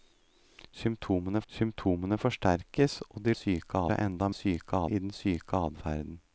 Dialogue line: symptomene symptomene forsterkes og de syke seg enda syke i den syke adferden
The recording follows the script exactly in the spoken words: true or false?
true